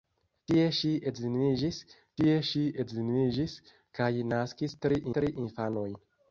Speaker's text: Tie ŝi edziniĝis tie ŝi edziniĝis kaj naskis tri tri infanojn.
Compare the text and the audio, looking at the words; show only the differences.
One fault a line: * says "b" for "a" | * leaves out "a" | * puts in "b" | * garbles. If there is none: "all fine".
all fine